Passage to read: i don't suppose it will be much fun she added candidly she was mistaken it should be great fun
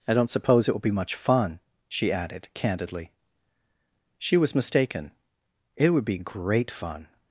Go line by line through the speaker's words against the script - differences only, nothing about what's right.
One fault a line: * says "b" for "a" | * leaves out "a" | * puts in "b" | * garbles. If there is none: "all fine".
* says "would" for "should"